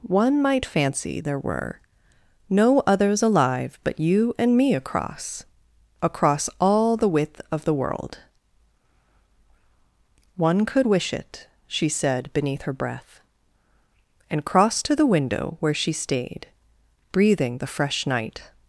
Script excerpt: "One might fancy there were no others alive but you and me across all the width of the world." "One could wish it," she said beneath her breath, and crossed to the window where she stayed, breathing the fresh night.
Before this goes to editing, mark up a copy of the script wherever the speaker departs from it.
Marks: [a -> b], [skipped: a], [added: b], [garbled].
"One might fancy there were no others alive but you and me across [added: across] all the width of the world." "One could wish it," she said beneath her breath, and crossed to the window where she stayed, breathing the fresh night.